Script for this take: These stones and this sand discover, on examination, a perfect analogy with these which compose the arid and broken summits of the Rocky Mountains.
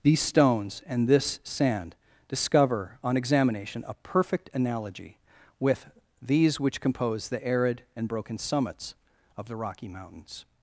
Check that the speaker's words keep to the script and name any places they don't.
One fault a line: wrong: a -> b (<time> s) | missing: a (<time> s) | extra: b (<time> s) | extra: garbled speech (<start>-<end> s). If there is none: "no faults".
no faults